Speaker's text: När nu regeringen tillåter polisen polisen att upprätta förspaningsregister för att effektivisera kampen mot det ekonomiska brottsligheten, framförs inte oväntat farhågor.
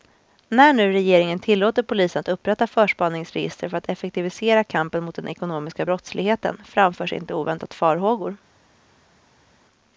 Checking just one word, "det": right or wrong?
wrong